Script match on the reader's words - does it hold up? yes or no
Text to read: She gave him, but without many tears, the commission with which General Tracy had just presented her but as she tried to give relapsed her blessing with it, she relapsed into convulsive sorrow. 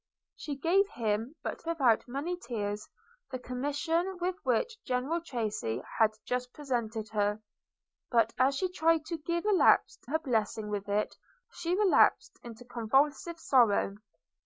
yes